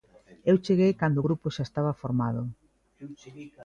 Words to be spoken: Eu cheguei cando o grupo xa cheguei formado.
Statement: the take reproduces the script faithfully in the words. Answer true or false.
false